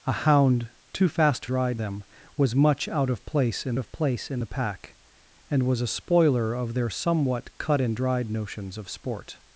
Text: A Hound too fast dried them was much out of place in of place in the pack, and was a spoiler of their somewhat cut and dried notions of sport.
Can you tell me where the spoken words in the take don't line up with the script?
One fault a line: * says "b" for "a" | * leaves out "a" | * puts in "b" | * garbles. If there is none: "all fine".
all fine